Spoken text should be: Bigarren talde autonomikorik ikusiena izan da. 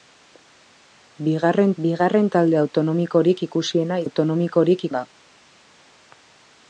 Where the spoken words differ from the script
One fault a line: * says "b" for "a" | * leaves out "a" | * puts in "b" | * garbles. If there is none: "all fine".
* puts in "bigarren"
* says "autonomikorik" for "izan"